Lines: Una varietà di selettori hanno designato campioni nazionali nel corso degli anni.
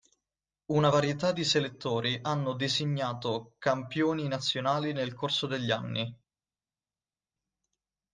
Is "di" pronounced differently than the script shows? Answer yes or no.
no